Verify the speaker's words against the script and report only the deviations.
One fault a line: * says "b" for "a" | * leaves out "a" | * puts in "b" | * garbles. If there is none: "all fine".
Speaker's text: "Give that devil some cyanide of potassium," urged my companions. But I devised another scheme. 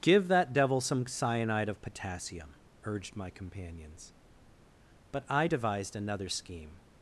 all fine